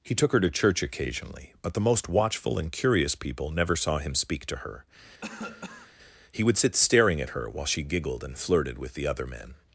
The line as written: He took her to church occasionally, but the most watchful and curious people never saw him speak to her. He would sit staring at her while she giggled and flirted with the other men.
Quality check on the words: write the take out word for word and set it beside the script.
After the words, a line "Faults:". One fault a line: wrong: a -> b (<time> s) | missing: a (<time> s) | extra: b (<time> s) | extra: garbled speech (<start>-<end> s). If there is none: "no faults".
He took her to church occasionally, but the most watchful and curious people never saw him speak to her. He would sit staring at her while she giggled and flirted with the other men.
Faults:
no faults